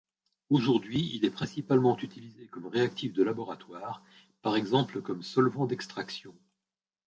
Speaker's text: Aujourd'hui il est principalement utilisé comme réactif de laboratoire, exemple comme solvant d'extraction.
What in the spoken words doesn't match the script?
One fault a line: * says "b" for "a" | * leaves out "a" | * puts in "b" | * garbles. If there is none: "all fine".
* puts in "par"